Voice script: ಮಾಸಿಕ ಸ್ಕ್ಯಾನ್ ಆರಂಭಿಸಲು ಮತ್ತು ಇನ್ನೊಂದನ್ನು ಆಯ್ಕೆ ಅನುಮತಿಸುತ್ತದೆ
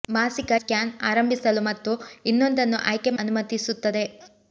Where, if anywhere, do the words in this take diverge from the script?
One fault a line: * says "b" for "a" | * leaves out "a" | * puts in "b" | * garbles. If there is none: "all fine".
all fine